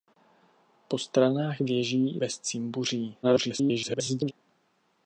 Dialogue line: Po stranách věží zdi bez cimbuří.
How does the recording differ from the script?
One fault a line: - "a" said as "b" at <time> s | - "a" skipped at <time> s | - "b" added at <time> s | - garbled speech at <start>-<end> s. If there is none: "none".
- "zdi" skipped at 2.2 s
- garbled speech at 3.2-4.3 s